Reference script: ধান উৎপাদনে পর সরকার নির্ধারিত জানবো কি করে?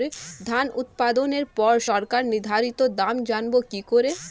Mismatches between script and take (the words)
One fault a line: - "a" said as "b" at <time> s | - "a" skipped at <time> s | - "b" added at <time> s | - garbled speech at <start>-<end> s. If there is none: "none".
- "দাম" added at 3.0 s